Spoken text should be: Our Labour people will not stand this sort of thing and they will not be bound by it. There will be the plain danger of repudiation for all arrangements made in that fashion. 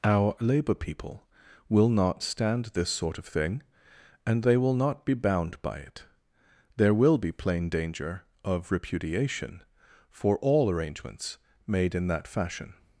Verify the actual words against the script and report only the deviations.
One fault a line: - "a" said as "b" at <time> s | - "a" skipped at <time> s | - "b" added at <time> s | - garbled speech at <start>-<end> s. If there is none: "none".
- "the" skipped at 7.3 s